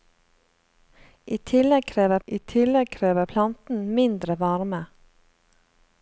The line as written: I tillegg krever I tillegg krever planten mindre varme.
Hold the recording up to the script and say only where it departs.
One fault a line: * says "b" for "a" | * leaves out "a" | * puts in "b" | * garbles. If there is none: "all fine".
all fine